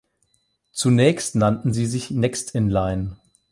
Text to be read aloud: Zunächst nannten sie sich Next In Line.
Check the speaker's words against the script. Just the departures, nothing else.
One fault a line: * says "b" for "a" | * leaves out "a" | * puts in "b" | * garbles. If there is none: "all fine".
all fine